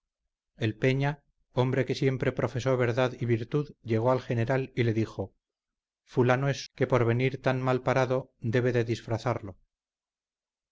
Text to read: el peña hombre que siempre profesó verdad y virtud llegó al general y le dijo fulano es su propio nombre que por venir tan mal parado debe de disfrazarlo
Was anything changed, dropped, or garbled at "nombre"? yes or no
yes